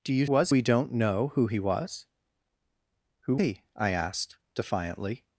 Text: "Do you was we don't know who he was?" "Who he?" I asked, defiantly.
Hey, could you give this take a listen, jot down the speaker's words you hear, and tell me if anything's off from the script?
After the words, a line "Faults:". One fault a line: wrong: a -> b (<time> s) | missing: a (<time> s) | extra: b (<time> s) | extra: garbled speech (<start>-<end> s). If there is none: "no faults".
"Do you was we don't know who he was?" "Who he?" I asked, defiantly.
Faults:
no faults